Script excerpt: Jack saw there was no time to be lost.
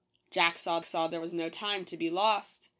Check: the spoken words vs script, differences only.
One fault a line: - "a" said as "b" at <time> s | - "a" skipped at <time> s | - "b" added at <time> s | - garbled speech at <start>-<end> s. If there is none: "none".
- "saw" added at 0.8 s